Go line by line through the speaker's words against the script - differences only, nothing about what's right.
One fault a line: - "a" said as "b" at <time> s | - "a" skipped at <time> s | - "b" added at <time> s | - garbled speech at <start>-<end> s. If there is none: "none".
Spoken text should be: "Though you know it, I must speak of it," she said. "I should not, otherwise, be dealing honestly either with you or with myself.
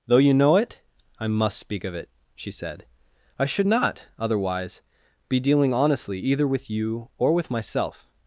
none